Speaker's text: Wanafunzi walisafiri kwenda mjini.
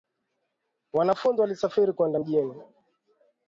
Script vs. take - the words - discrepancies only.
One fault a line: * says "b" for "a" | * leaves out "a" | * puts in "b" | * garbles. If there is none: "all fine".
all fine